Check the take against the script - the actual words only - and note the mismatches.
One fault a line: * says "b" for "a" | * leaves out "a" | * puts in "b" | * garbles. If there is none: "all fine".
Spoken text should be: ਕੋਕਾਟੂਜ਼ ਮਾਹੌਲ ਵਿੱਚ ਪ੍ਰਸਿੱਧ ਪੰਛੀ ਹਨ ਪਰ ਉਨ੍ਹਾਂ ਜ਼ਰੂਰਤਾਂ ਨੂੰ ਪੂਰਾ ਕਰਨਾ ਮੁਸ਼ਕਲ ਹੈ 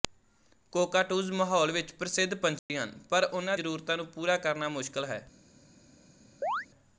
all fine